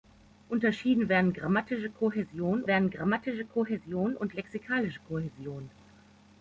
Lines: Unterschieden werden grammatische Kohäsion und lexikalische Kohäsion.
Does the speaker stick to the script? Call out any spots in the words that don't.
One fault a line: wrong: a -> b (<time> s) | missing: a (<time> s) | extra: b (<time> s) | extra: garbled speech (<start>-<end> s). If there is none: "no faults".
extra: werden grammatische Kohäsion (2.7 s)